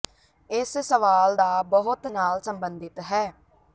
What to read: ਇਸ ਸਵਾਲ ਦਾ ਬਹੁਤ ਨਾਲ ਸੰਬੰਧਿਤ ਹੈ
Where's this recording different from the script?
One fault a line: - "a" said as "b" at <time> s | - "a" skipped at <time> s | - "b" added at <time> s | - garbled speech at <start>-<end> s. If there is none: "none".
none